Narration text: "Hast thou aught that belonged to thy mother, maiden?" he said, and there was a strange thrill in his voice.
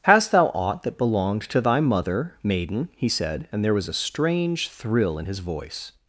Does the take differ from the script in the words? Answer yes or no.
no